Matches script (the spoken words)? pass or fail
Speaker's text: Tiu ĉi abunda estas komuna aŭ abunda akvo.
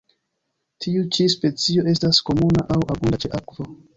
fail